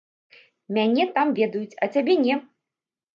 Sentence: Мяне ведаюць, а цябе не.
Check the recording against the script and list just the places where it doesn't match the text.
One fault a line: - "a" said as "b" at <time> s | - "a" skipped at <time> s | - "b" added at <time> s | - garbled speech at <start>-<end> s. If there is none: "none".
- "там" added at 1.2 s